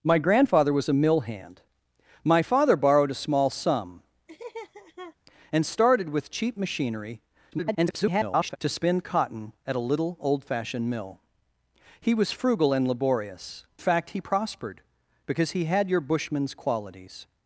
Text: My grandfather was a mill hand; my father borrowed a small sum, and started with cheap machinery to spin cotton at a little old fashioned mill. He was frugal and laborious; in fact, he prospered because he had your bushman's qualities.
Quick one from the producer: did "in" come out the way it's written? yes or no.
no